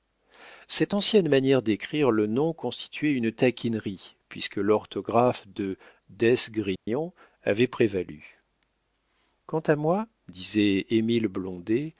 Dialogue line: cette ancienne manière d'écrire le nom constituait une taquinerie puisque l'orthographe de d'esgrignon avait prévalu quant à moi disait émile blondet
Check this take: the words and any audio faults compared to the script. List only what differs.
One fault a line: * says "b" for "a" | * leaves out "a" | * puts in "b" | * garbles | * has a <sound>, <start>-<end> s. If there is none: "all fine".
* has a dropout, 6.8-6.9 s